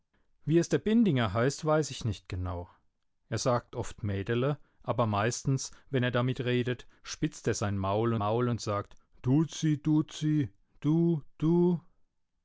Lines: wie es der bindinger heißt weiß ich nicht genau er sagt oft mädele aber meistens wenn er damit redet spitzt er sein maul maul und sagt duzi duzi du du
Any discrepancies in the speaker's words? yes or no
no